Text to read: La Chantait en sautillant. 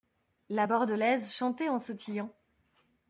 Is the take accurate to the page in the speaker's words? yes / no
no